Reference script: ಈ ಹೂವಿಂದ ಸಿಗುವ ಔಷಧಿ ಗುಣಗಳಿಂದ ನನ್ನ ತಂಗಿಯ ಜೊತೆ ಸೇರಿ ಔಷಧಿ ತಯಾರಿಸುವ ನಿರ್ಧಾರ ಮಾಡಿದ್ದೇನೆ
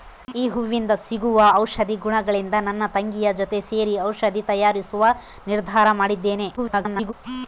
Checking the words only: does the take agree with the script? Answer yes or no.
no